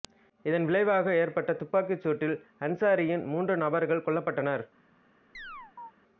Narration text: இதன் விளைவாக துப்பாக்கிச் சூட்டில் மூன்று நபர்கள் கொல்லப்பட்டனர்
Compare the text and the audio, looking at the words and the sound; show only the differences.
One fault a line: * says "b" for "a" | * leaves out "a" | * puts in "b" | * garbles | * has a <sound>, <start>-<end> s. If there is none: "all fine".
* puts in "ஏற்பட்ட"
* puts in "அன்சாரியின்"
* has a chirp, 5.3-5.9 s